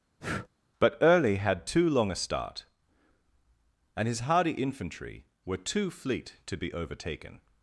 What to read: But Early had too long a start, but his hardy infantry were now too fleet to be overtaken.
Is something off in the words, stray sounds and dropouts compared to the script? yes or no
yes